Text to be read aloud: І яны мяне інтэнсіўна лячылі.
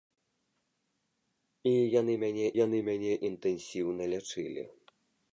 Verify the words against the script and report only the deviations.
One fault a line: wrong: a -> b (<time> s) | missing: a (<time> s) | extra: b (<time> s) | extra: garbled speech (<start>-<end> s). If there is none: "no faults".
extra: яны мяне (2.6 s)